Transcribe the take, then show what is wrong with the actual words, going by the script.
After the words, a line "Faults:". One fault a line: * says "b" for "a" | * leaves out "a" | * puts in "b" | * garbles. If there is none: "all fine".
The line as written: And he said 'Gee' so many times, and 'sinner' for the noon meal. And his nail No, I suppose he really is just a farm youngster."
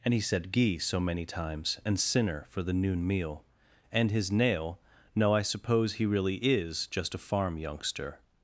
And he said 'Gee' so many times, and 'sinner' for the noon meal. And his nail No, I suppose he really is just a farm youngster."
Faults:
all fine